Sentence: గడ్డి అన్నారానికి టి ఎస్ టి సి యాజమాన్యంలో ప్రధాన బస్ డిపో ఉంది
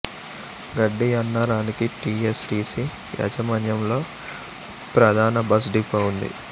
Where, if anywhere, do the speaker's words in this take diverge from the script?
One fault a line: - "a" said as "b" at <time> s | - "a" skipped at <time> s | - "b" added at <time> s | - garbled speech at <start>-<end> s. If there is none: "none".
none